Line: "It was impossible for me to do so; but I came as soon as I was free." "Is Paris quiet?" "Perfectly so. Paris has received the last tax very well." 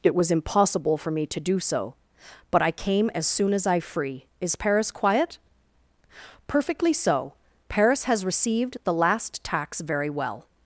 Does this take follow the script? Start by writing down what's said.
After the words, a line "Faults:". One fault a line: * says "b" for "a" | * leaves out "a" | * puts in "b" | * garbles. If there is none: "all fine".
"It was impossible for me to do so; but I came as soon as I free." "Is Paris quiet?" "Perfectly so. Paris has received the last tax very well."
Faults:
* leaves out "was"